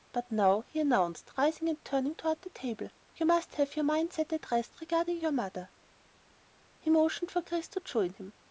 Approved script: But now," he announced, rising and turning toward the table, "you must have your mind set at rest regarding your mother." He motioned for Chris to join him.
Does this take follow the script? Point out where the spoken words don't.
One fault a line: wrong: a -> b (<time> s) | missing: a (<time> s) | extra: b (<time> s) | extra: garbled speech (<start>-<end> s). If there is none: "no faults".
no faults